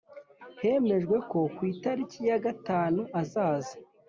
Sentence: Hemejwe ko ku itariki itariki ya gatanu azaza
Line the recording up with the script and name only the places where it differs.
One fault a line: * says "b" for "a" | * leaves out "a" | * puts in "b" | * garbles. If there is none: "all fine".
* leaves out "itariki"